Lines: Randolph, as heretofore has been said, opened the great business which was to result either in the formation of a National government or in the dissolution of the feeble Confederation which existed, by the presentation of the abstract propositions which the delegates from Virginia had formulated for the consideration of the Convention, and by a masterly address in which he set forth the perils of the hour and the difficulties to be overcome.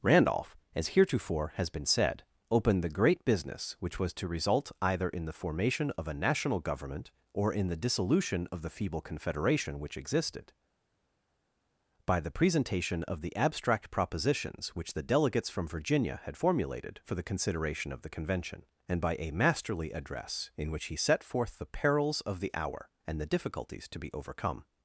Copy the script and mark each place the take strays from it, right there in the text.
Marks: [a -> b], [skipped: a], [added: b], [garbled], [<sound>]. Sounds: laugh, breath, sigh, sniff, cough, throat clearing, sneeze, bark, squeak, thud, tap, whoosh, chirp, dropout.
Randolph, as heretofore has been said, opened the great business which was to result either in the formation of a National government or in the dissolution of the feeble Confederation which existed, by the presentation of the abstract propositions which the delegates from Virginia had formulated for the consideration of the Convention, and by a masterly address in which he set forth the perils of the hour and the difficulties to be overcome.